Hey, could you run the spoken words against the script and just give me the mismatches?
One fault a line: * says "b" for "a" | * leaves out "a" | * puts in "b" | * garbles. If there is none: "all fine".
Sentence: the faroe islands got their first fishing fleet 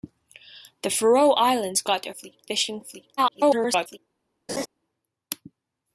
* says "fleet" for "first"
* garbles